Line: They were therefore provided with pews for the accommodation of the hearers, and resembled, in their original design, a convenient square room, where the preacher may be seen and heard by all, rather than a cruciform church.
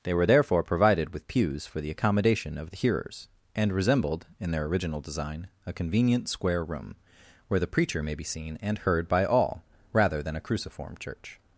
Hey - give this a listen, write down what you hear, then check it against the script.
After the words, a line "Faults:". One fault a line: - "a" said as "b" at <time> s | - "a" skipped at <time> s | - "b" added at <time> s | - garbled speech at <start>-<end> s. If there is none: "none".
They were therefore provided with pews for the accommodation of the hearers, and resembled, in their original design, a convenient square room, where the preacher may be seen and heard by all, rather than a cruciform church.
Faults:
none